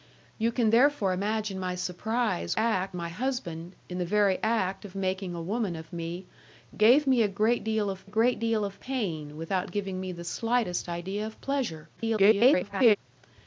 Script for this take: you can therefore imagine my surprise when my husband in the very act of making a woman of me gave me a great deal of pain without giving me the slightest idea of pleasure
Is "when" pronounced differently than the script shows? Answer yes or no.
yes